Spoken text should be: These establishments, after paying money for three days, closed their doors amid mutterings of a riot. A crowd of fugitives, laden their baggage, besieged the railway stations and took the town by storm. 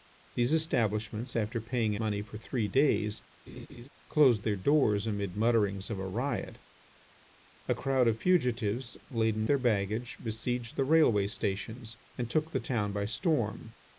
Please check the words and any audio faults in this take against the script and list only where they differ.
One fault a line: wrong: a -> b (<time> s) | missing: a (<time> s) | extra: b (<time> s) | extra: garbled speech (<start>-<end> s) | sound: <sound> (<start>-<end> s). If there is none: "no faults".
sound: laugh (3.5-3.9 s)